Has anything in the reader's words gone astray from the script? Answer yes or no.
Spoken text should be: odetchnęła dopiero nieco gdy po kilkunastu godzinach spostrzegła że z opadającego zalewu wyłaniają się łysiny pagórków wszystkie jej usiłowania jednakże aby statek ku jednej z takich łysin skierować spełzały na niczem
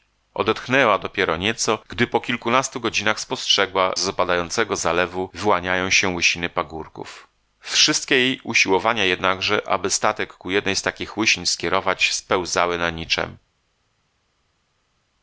yes